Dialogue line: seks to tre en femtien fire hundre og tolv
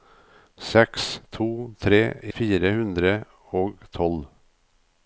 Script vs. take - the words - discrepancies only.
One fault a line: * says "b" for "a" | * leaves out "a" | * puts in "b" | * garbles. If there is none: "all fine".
* leaves out "en femtien"